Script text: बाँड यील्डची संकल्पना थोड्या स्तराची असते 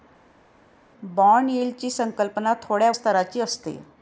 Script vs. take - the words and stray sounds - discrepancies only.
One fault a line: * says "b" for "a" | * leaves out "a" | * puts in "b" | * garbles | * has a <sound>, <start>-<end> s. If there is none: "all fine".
all fine